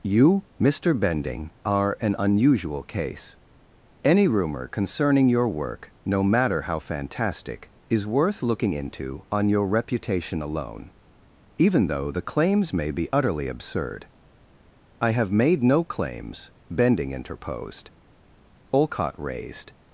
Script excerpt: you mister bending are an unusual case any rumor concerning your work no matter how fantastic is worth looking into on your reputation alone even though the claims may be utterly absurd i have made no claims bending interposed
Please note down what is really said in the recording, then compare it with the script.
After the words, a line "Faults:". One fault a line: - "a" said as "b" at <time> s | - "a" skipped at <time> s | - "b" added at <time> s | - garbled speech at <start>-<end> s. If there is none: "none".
you mister bending are an unusual case any rumor concerning your work no matter how fantastic is worth looking into on your reputation alone even though the claims may be utterly absurd i have made no claims bending interposed olcott raised
Faults:
- "olcott raised" added at 18.7 s